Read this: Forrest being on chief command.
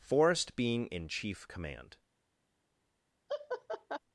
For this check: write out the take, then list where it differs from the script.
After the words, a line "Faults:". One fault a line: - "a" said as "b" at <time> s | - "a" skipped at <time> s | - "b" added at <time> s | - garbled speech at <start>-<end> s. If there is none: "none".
Forrest being in chief command.
Faults:
- "on" said as "in" at 0.9 s